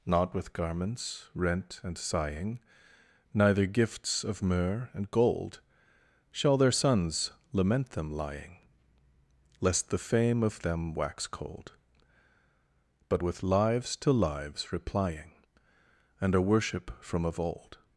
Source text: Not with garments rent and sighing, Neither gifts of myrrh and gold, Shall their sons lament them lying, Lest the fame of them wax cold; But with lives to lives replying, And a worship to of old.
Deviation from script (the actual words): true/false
true